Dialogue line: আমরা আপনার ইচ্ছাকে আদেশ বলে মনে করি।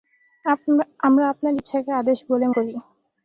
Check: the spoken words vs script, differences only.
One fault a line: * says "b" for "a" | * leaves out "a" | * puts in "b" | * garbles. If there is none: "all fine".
* leaves out "মনে"